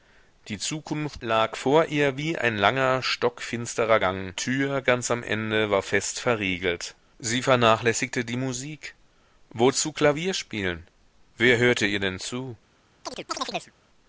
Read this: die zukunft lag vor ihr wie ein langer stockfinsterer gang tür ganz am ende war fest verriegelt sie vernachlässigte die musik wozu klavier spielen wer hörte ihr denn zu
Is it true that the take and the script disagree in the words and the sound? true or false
true